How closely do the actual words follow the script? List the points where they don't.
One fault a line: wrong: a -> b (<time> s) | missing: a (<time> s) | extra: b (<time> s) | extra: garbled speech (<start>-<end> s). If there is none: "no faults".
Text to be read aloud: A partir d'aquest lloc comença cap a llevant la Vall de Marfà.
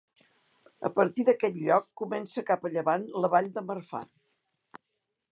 no faults